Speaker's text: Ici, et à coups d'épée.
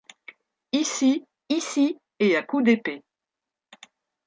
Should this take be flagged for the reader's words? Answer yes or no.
yes